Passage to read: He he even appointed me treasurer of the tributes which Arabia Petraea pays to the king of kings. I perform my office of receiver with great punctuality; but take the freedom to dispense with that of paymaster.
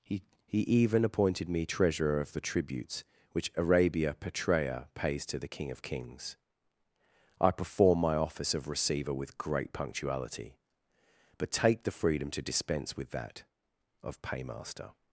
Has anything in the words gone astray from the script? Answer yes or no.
no